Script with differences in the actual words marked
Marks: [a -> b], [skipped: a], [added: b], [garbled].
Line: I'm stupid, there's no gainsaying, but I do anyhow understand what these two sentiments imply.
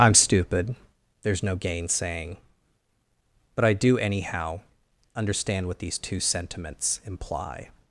I'm stupid, there's no gainsaying, but I do anyhow understand what these two sentiments imply.